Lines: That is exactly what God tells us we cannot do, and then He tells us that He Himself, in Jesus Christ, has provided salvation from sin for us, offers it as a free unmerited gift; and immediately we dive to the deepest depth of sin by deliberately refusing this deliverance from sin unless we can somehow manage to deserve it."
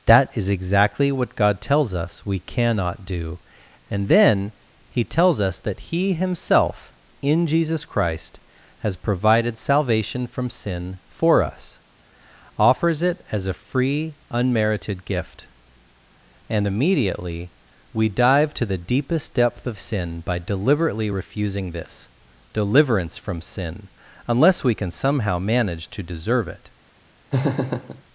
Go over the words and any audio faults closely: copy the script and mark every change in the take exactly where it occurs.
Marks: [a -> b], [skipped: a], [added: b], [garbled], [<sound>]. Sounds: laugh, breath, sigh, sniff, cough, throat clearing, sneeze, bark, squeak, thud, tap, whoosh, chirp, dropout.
That is exactly what God tells us we cannot do, and then He tells us that He Himself, in Jesus Christ, has provided salvation from sin for us, offers it as a free unmerited gift; and immediately we dive to the deepest depth of sin by deliberately refusing this deliverance from sin unless we can somehow manage to deserve it." [laugh]